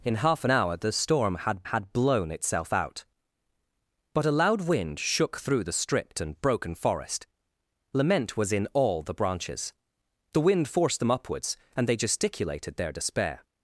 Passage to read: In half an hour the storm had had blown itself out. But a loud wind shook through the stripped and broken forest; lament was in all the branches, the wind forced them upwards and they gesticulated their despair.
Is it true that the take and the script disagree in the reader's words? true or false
false